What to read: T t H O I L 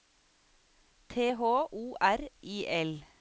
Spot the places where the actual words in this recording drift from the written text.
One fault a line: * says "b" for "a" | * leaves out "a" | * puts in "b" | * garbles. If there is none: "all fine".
* leaves out "t"
* puts in "R"